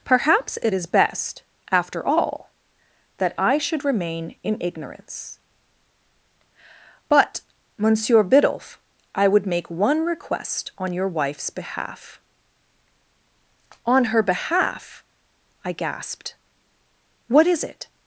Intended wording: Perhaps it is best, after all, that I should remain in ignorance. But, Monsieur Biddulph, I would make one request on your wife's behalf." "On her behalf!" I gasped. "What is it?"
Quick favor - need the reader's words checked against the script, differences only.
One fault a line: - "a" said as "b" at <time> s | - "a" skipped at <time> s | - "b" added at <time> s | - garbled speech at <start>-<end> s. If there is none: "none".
none